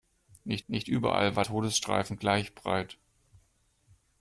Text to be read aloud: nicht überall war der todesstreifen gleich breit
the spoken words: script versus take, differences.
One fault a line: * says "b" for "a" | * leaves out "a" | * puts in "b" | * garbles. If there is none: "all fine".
* puts in "nicht"
* leaves out "der"